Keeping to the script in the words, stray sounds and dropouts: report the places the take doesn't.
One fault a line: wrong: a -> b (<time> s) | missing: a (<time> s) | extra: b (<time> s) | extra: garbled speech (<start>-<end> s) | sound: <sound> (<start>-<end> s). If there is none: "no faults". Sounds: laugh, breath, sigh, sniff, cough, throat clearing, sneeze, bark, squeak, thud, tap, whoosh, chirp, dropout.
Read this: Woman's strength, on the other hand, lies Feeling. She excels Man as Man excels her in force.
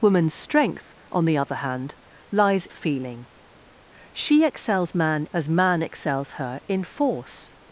no faults